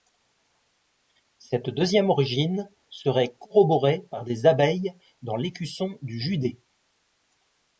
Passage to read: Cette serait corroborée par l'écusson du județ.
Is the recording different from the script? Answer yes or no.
yes